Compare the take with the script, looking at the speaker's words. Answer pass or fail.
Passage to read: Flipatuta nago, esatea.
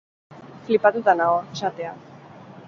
pass